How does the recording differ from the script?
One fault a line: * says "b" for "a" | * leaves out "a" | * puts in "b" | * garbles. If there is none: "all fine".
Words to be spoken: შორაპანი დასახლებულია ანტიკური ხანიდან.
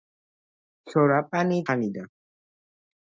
* leaves out "დასახლებულია ანტიკური"